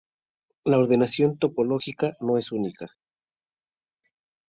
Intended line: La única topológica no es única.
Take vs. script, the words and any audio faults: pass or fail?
fail